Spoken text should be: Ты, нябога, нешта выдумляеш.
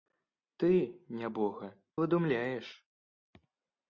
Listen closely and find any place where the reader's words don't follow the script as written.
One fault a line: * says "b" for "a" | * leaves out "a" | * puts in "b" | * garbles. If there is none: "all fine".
* leaves out "нешта"